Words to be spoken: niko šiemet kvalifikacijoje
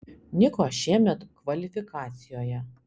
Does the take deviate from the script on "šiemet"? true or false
false